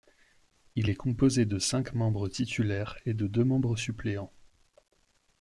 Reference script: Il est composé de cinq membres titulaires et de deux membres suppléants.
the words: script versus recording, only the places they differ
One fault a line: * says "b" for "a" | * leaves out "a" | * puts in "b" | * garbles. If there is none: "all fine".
all fine